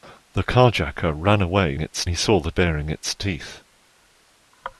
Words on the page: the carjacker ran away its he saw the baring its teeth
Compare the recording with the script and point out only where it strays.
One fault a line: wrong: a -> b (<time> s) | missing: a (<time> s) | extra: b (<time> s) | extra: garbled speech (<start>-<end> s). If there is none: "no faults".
no faults